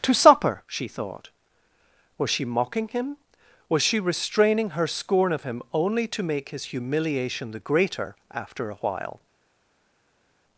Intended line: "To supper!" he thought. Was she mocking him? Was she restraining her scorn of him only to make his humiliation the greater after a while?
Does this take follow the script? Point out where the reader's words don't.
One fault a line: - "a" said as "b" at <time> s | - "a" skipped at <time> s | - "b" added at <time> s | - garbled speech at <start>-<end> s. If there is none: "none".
- "he" said as "she" at 0.7 s